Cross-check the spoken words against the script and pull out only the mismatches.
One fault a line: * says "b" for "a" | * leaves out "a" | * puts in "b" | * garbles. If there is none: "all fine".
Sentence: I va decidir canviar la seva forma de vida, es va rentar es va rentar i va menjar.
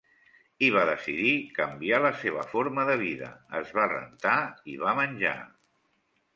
* leaves out "es va rentar"